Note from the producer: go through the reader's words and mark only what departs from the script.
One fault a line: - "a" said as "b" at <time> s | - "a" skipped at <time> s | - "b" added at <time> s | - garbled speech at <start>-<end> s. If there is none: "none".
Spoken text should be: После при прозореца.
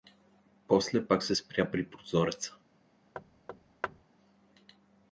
- "пак се спря" added at 1.0 s